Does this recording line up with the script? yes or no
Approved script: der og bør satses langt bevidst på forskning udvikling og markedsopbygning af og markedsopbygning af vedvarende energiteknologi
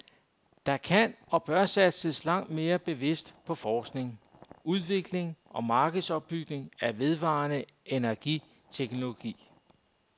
no